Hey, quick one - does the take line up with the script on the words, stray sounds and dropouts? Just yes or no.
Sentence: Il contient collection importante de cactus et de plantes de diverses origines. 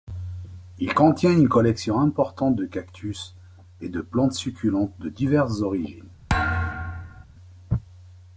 no